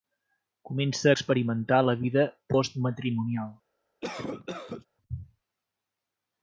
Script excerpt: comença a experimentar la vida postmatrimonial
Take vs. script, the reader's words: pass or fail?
pass